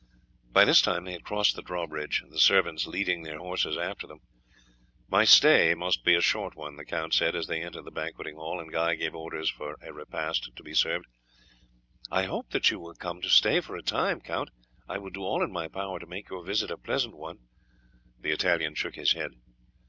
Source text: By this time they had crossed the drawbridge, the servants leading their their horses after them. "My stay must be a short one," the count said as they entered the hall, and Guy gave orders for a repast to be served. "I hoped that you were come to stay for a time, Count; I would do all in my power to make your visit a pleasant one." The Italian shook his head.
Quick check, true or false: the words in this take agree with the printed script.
false